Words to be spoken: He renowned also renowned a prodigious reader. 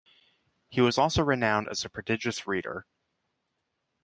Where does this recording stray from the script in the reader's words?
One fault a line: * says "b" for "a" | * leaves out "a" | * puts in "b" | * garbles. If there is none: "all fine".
* says "was" for "renowned"
* puts in "as"